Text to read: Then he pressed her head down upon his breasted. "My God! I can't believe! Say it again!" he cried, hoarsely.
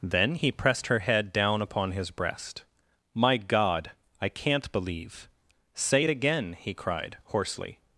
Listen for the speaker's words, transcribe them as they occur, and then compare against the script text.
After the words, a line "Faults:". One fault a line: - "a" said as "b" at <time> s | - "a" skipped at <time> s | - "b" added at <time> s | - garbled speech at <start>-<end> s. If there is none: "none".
Then he pressed her head down upon his breast. "My God! I can't believe! Say it again!" he cried, hoarsely.
Faults:
- "breasted" said as "breast" at 2.1 s